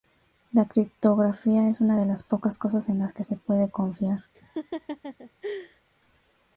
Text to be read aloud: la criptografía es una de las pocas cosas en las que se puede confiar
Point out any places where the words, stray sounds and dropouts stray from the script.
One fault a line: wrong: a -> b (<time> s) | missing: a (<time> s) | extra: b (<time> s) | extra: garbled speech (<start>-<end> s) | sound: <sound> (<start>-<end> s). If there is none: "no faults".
sound: laugh (4.3-5.8 s)